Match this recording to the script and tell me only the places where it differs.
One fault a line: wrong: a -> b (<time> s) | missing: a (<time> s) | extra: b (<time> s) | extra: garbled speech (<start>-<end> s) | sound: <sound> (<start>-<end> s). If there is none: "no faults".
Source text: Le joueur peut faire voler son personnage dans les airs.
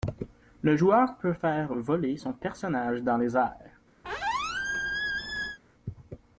sound: squeak (4.0-5.6 s)